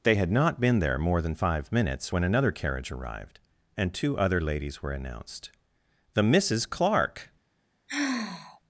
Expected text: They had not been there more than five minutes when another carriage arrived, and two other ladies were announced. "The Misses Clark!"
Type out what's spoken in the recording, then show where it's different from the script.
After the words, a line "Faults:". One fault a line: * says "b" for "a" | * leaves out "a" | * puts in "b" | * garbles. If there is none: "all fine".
They had not been there more than five minutes when another carriage arrived, and two other ladies were announced. "The Misses Clark!"
Faults:
all fine